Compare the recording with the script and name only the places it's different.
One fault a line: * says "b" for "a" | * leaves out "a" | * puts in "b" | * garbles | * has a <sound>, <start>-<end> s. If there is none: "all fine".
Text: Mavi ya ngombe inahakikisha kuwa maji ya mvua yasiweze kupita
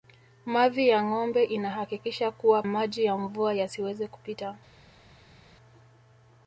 all fine